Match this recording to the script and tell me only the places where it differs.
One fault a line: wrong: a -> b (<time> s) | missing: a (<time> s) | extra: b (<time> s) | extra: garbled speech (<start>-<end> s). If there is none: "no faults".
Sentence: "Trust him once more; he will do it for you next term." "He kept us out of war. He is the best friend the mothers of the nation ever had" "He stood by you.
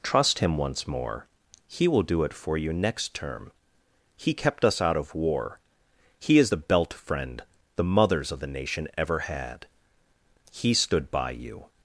wrong: best -> belt (6.6 s)